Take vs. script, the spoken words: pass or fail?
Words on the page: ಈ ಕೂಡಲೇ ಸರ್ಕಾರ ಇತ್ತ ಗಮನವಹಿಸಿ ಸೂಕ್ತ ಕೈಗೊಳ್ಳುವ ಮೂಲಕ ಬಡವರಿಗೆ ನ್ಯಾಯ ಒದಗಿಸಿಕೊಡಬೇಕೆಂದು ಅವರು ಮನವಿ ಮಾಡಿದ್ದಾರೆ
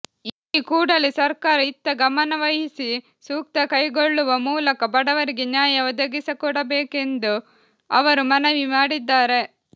pass